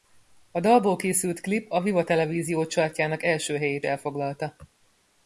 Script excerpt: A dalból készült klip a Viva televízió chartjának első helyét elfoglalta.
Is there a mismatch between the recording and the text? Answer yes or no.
no